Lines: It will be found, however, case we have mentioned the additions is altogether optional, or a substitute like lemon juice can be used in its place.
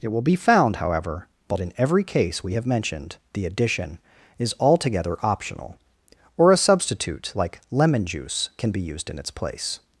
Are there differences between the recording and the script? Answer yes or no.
yes